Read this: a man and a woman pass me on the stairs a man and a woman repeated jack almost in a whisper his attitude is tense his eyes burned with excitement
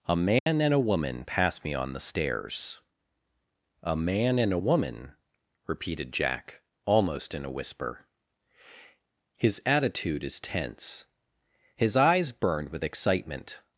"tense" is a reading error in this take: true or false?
false